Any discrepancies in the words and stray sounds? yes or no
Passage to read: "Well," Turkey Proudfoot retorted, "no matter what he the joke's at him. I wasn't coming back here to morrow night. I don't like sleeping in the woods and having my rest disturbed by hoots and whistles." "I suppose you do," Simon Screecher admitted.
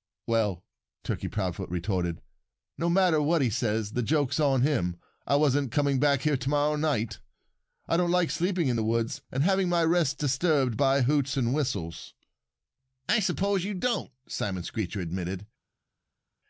yes